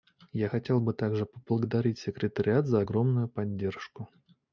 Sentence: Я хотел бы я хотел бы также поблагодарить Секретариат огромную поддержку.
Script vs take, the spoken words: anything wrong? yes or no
yes